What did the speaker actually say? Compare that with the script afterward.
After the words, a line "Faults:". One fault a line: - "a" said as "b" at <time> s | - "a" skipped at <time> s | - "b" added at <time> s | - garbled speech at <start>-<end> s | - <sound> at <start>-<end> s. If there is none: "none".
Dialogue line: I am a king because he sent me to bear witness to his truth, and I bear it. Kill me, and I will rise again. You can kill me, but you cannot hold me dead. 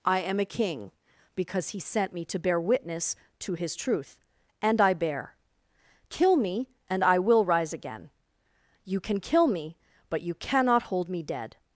I am a king because he sent me to bear witness to his truth, and I bear. Kill me, and I will rise again. You can kill me, but you cannot hold me dead.
Faults:
- "it" skipped at 5.3 s